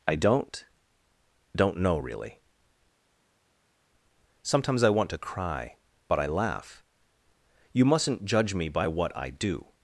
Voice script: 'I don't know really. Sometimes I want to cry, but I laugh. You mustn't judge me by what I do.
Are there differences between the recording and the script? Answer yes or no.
yes